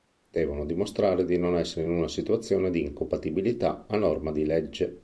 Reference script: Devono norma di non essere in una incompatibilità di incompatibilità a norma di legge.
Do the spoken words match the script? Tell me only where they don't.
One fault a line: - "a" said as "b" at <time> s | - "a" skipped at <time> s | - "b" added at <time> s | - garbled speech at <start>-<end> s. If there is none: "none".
- "norma" said as "dimostrare" at 0.7 s
- "incompatibilità" said as "situazione" at 2.1 s